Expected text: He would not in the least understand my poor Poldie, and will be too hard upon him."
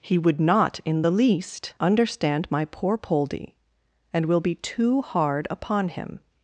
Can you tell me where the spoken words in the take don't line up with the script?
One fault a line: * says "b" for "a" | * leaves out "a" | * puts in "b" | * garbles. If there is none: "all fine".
all fine